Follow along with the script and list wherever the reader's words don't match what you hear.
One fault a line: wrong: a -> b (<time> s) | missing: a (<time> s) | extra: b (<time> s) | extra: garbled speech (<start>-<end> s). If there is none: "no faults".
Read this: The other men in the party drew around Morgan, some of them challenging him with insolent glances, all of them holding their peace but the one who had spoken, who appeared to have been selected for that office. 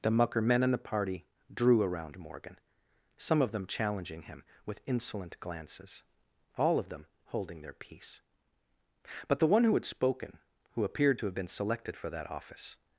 wrong: other -> mucker (0.1 s)